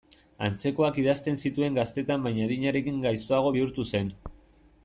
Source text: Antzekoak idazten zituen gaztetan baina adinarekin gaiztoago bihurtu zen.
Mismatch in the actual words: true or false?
false